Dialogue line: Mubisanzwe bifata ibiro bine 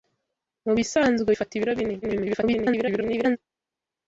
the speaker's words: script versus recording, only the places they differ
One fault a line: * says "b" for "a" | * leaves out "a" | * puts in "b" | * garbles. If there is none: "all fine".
* garbles